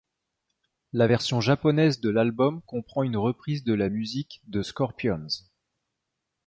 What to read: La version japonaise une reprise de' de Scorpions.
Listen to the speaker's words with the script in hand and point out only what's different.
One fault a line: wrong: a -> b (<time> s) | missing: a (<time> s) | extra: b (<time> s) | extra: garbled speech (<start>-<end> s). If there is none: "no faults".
extra: de l'album comprend (2.0 s)
extra: la musique (3.7 s)